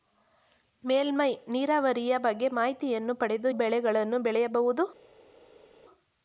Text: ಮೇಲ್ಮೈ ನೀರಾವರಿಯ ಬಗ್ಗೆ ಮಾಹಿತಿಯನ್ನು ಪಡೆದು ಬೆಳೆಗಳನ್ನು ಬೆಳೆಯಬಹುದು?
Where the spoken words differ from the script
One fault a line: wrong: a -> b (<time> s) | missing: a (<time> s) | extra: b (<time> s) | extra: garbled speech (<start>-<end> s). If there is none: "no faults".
no faults